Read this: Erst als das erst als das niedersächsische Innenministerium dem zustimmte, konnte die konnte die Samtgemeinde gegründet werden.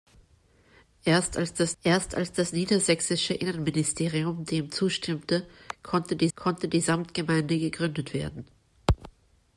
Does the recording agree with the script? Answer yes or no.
yes